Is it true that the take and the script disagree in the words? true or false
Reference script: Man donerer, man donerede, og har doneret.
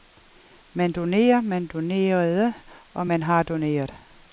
true